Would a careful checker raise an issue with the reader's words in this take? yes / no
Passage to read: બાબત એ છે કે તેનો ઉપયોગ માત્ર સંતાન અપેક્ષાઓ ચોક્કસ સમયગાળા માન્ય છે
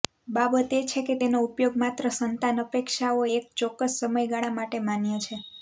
yes